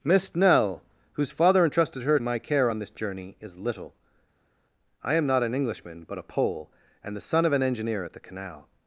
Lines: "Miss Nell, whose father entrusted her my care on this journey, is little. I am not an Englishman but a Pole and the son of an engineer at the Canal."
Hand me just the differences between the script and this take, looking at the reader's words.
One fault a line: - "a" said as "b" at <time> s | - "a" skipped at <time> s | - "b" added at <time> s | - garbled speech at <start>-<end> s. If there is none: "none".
none